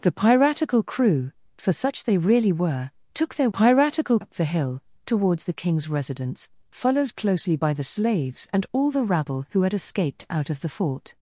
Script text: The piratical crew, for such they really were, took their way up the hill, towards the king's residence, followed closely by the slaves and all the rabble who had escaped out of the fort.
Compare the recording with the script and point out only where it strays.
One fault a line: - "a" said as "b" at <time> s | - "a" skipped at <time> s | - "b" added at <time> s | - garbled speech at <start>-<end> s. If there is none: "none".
- "way" said as "piratical" at 3.5 s